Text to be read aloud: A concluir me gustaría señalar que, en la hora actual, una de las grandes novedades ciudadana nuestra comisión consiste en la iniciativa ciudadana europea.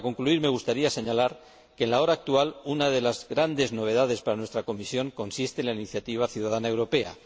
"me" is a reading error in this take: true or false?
false